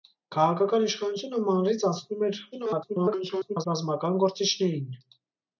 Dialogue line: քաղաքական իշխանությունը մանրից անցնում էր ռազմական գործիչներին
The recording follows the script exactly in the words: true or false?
false